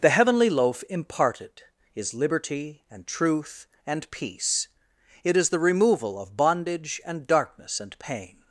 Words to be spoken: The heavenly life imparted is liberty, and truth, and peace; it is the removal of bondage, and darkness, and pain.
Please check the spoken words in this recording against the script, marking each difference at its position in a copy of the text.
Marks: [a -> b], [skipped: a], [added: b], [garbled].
The heavenly [life -> loaf] imparted is liberty, and truth, and peace; it is the removal of bondage, and darkness, and pain.